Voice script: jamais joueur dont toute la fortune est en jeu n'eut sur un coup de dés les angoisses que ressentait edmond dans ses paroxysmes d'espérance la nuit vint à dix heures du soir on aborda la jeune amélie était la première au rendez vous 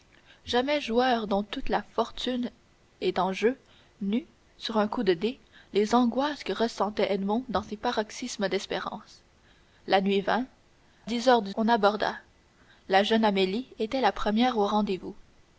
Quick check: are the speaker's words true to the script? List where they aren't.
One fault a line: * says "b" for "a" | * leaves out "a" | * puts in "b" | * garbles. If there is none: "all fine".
* leaves out "à"
* leaves out "soir"